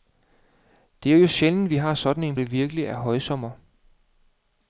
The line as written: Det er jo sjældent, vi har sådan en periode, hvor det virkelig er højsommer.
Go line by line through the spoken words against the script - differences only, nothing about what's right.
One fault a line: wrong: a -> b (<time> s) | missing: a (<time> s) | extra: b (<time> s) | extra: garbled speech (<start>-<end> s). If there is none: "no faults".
missing: periode hvor (2.4 s)